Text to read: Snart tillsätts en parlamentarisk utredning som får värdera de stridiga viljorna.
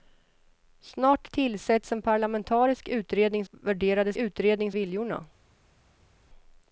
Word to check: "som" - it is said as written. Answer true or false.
false